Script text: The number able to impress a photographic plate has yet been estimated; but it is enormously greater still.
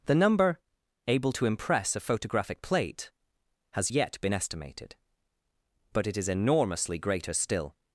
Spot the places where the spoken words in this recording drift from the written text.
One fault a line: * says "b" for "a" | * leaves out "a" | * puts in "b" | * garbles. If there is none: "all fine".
all fine